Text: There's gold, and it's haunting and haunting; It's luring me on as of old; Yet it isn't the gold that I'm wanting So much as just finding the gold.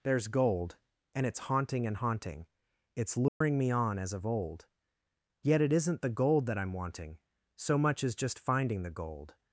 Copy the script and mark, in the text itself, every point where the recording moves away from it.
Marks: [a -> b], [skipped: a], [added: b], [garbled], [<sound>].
There's gold, and it's haunting and haunting; It's luring [dropout] me on as of old; Yet it isn't the gold that I'm wanting So much as just finding the gold.